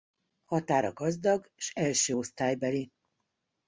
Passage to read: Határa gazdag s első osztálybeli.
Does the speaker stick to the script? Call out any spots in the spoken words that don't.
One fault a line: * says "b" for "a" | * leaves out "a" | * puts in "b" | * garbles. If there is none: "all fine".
all fine